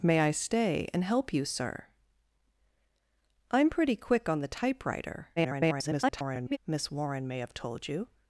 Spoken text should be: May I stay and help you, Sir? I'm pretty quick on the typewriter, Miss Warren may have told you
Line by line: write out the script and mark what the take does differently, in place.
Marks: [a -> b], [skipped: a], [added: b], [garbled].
May I stay and help you, Sir? I'm pretty quick on the typewriter, [garbled] Miss Warren may have told you